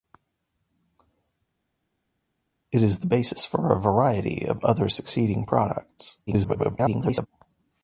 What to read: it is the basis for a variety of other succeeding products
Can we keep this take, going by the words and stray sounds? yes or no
no